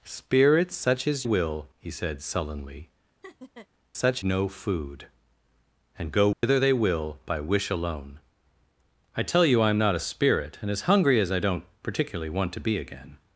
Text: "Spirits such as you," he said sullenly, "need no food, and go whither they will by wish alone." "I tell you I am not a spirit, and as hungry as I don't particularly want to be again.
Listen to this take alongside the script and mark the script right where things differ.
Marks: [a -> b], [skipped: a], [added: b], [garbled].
"Spirits such as [you," -> will] he said sullenly, ["need -> such] no food, and go whither they will by wish alone." "I tell you I am not a spirit, and as hungry as I don't particularly want to be again.